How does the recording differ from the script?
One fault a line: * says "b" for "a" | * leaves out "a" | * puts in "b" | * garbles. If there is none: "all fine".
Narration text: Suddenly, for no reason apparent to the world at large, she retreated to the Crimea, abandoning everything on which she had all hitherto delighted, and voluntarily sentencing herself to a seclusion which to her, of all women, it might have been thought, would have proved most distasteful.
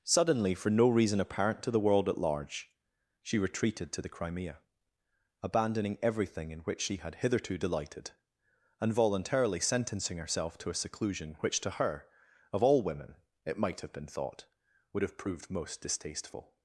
* says "in" for "on"
* leaves out "all"